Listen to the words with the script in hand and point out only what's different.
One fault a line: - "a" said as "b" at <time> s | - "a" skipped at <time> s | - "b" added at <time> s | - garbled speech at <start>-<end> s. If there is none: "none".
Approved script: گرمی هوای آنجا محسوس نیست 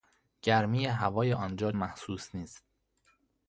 none